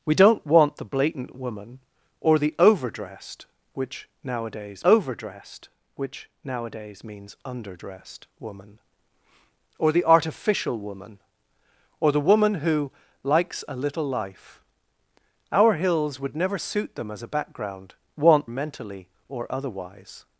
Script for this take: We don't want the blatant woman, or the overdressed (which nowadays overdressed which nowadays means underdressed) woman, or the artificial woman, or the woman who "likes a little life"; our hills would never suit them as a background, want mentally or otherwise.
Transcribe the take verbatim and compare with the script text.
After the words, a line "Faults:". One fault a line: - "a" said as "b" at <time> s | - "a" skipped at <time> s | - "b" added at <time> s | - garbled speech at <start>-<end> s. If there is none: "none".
We don't want the blatant woman, or the overdressed (which nowadays overdressed which nowadays means underdressed) woman, or the artificial woman, or the woman who "likes a little life"; our hills would never suit them as a background, want mentally or otherwise.
Faults:
none